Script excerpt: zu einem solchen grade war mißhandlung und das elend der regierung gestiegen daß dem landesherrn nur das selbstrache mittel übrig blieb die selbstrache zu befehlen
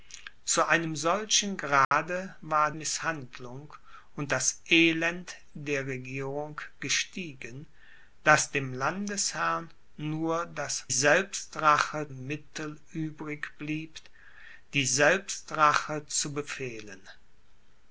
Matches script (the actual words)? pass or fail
pass